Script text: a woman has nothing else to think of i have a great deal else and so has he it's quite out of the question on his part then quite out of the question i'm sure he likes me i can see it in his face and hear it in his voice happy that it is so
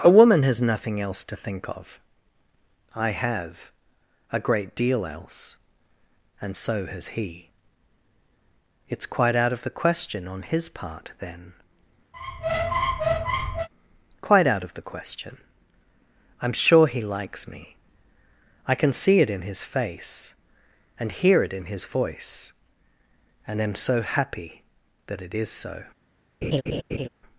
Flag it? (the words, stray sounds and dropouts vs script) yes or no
yes